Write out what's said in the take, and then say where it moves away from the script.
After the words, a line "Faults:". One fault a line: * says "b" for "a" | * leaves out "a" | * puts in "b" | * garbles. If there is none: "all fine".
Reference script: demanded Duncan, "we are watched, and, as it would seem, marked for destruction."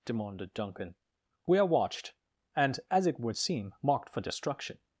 demanded Duncan, "we are watched, and, as it would seem, marked for destruction."
Faults:
all fine